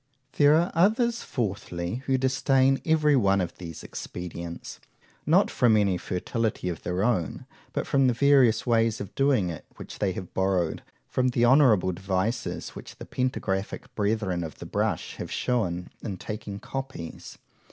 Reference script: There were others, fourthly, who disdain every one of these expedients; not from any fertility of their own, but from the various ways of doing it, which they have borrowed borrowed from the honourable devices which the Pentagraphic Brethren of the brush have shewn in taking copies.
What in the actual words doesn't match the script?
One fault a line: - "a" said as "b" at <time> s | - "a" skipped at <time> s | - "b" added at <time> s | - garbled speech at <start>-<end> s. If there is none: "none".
- "were" said as "are" at 0.6 s
- "borrowed" skipped at 10.8 s